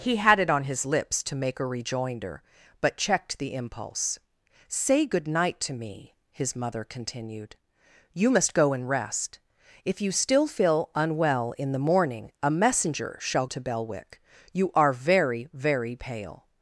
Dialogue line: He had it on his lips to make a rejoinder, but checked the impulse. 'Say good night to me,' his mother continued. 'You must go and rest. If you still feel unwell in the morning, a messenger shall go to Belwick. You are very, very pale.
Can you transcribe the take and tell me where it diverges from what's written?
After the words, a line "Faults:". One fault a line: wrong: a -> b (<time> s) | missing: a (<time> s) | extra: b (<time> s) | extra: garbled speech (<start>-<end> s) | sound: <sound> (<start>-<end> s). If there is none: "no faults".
He had it on his lips to make a rejoinder, but checked the impulse. 'Say good night to me,' his mother continued. 'You must go and rest. If you still feel unwell in the morning, a messenger shall to Belwick. You are very, very pale.
Faults:
missing: go (13.4 s)